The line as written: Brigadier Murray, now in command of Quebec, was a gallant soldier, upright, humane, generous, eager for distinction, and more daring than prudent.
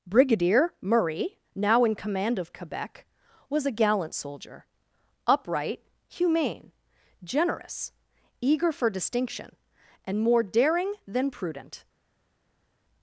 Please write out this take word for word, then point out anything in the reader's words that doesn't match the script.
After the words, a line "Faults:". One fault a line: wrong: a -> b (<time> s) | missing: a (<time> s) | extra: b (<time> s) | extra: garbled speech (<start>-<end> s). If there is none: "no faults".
Brigadier Murray, now in command of Quebec, was a gallant soldier, upright, humane, generous, eager for distinction, and more daring than prudent.
Faults:
no faults